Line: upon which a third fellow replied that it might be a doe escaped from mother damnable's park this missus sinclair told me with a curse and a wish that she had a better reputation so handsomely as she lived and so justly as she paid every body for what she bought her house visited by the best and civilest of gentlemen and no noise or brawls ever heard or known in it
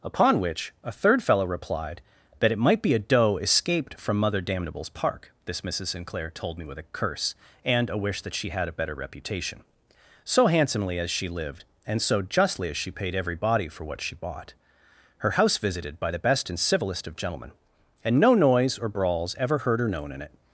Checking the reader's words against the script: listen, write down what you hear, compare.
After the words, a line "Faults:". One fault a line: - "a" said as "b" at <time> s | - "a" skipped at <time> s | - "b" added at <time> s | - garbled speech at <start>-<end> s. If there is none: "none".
upon which a third fellow replied that it might be a doe escaped from mother damnable's park this missus sinclair told me with a curse and a wish that she had a better reputation so handsomely as she lived and so justly as she paid every body for what she bought her house visited by the best and civilest of gentlemen and no noise or brawls ever heard or known in it
Faults:
none